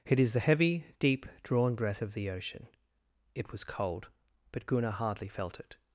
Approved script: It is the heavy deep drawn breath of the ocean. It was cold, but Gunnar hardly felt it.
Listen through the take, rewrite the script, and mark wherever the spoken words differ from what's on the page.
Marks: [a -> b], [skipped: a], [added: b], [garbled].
It is the heavy deep drawn breath of the ocean. It was cold, but Gunnar hardly felt it.